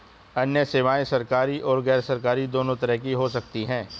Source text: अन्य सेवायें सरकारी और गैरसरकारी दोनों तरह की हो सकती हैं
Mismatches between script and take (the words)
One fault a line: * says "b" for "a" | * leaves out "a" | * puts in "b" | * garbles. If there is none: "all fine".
all fine